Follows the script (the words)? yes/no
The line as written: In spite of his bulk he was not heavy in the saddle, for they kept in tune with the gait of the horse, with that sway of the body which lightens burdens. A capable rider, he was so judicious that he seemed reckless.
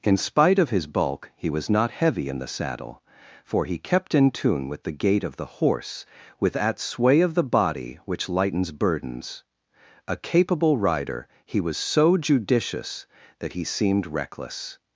no